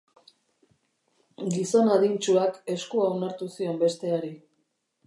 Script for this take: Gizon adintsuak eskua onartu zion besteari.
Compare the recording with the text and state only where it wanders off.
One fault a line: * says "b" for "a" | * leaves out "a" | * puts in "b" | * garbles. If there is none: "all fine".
all fine